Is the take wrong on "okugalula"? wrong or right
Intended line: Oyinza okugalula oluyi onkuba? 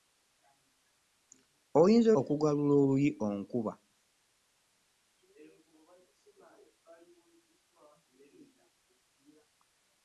right